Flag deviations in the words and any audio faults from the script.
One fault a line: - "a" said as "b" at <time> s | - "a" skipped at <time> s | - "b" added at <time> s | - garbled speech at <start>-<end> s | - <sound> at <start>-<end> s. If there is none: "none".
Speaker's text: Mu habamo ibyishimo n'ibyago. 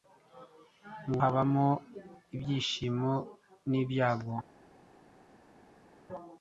none